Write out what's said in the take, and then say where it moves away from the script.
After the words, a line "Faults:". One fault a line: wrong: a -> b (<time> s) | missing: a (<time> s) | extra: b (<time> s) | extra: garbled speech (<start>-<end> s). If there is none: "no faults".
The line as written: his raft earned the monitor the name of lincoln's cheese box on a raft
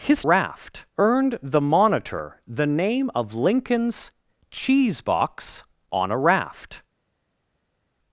his raft earned the monitor the name of lincoln's cheese box on a raft
Faults:
no faults